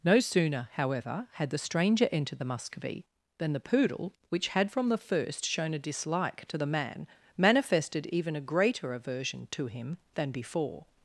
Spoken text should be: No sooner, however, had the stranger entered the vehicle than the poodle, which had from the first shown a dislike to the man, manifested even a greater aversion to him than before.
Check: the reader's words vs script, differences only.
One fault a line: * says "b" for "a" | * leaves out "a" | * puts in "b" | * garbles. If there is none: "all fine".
* says "muscovy" for "vehicle"